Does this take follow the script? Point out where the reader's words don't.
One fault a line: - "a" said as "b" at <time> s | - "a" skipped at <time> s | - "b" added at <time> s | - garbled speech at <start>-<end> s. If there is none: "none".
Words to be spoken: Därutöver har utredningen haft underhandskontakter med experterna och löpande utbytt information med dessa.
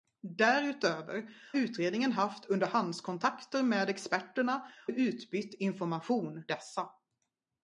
- "har" skipped at 1.3 s
- "och löpande" skipped at 4.7 s
- "med" skipped at 6.4 s